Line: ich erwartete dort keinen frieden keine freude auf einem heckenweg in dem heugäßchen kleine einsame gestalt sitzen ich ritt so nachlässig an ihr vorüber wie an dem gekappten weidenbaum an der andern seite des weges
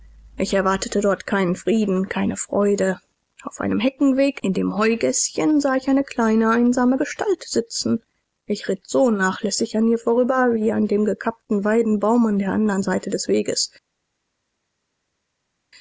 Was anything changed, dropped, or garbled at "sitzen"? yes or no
no